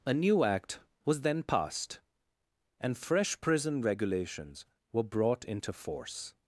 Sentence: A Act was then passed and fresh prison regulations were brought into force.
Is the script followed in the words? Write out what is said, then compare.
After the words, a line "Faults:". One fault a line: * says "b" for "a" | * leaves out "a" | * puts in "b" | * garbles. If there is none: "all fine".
A new Act was then passed and fresh prison regulations were brought into force.
Faults:
* puts in "new"